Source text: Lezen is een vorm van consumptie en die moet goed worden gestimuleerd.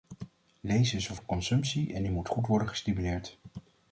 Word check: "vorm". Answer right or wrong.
wrong